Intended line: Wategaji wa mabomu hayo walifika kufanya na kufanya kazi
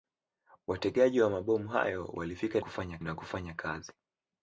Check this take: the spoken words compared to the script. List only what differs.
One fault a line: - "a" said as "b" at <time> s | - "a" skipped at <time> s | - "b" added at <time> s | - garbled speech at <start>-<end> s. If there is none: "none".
none